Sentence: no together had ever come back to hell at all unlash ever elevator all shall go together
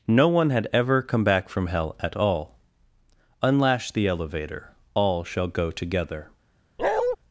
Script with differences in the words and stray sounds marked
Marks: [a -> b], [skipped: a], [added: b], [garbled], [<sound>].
no [together -> one] had ever come back [to -> from] hell at all unlash [ever -> the] elevator all shall go together [bark]